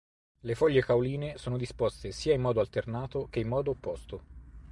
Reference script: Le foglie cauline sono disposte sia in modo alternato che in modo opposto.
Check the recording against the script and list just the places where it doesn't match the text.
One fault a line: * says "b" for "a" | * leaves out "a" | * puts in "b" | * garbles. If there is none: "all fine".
all fine